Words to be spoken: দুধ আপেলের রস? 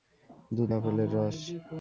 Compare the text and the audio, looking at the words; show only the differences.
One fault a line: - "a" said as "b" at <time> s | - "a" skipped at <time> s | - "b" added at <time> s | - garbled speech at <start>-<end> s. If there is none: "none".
none